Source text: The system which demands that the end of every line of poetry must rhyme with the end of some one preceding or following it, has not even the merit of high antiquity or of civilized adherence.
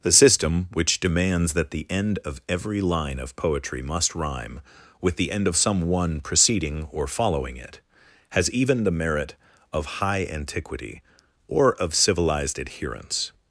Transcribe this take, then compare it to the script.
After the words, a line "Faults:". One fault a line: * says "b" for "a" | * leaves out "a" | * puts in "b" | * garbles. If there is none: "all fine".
The system which demands that the end of every line of poetry must rhyme with the end of some one preceding or following it, has even the merit of high antiquity or of civilized adherence.
Faults:
* leaves out "not"